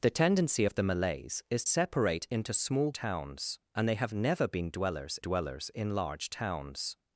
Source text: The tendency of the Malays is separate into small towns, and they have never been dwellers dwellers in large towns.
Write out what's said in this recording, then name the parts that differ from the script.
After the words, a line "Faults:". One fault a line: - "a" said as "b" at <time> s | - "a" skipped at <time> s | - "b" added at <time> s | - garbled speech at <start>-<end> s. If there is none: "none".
The tendency of the Malays is separate into small towns, and they have never been dwellers dwellers in large towns.
Faults:
none